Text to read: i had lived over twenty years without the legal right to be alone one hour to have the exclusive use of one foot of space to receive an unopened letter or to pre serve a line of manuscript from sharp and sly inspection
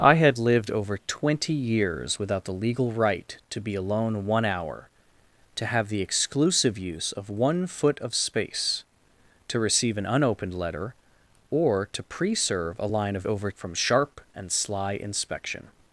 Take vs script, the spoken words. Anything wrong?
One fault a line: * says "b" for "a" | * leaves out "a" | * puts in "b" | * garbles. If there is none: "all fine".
* says "over" for "manuscript"